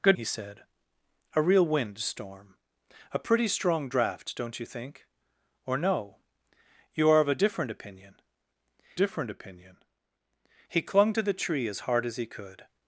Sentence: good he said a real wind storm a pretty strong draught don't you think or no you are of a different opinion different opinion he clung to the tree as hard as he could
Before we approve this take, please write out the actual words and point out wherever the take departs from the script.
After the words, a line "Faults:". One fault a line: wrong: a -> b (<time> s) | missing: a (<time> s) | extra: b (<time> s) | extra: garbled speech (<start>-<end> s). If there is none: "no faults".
good he said a real wind storm a pretty strong draught don't you think or no you are of a different opinion different opinion he clung to the tree as hard as he could
Faults:
no faults